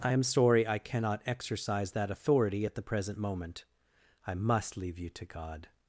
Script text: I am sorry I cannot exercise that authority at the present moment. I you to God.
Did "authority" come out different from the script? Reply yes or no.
no